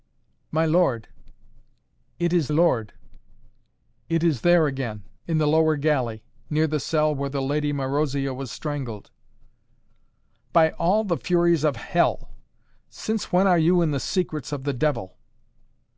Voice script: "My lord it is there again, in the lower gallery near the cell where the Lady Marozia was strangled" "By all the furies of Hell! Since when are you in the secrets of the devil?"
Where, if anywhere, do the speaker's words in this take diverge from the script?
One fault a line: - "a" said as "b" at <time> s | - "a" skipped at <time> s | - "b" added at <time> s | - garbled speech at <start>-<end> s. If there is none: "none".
- "lord it is" added at 2.5 s